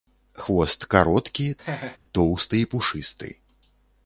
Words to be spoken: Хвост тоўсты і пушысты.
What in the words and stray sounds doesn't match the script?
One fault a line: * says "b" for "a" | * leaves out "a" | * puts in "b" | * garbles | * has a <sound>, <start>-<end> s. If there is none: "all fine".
* puts in "кароткі"
* has a laugh, 1.6-2.0 s